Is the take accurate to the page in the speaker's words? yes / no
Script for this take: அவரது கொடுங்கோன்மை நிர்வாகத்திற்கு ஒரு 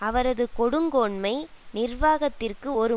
yes